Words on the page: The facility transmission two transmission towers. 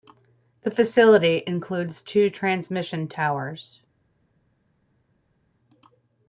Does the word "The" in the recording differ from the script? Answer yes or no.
no